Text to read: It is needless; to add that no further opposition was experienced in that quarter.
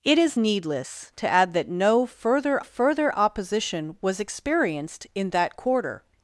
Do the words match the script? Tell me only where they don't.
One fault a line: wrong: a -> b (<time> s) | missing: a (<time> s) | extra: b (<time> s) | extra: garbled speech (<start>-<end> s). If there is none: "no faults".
extra: further (2.6 s)